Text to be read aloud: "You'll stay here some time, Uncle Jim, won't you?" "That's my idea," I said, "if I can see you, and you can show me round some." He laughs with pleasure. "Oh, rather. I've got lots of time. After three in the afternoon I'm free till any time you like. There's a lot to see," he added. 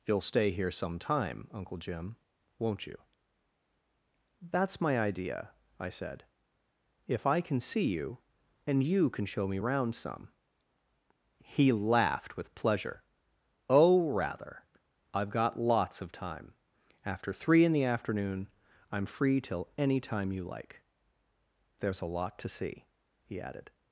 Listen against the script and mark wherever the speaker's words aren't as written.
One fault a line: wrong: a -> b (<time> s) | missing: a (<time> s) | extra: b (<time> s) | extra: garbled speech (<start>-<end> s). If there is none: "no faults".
wrong: laughs -> laughed (11.7 s)